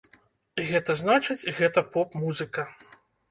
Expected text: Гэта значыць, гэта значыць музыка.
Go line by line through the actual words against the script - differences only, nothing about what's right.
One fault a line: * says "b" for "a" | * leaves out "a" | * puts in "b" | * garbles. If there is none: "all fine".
* says "поп" for "значыць"